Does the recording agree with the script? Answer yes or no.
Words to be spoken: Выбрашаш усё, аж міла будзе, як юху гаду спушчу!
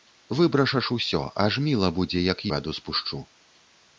no